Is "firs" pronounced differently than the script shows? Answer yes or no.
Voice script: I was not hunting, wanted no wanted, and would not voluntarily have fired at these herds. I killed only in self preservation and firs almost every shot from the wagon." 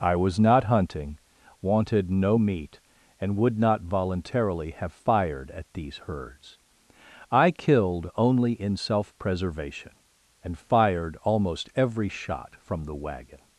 yes